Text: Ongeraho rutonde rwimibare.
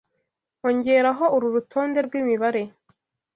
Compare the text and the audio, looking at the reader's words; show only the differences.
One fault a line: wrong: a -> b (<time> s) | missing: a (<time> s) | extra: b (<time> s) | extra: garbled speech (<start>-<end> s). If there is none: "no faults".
extra: uru (1.4 s)